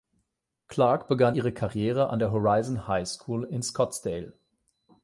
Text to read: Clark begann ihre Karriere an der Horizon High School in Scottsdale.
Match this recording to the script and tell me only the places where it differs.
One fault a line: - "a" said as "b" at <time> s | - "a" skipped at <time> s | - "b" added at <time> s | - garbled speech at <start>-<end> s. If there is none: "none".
none